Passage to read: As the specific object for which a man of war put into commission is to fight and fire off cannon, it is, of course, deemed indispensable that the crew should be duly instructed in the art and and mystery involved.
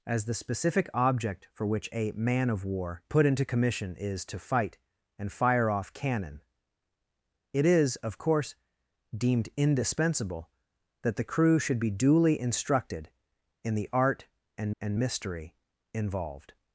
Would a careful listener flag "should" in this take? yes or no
no